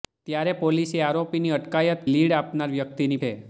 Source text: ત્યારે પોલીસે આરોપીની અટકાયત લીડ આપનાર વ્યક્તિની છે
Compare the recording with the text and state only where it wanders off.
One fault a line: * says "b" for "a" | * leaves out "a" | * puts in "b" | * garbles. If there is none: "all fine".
all fine